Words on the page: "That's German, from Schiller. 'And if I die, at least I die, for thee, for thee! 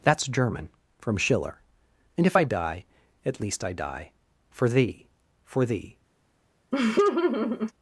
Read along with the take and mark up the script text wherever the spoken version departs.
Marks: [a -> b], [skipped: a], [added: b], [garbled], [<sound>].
"That's German, from Schiller. 'And if I die, at least I die, for thee, for thee! [laugh]